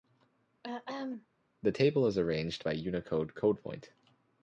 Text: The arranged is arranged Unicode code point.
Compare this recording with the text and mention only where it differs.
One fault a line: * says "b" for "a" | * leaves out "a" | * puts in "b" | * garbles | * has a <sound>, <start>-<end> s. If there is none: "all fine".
* has a throat clearing, 0.6-1.3 s
* says "table" for "arranged"
* puts in "by"